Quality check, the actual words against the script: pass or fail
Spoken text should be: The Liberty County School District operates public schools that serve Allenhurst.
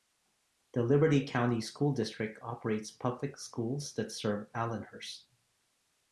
pass